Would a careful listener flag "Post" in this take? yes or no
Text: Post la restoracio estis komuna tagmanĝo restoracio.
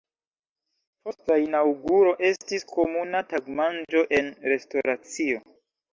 no